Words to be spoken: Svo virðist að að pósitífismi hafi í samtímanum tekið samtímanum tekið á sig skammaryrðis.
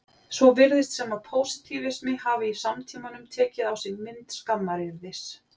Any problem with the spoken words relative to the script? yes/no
yes